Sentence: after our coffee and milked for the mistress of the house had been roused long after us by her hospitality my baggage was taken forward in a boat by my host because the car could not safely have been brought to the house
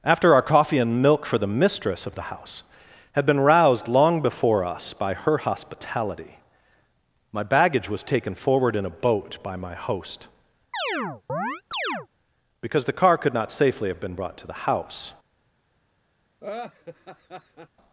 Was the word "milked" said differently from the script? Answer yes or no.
yes